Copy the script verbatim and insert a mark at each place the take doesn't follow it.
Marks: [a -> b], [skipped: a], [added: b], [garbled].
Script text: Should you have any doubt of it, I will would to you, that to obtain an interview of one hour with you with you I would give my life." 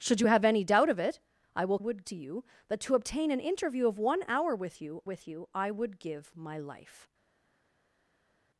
Should you have any doubt of it, I will would to you, that to obtain an interview of one hour with you with you I would give my life."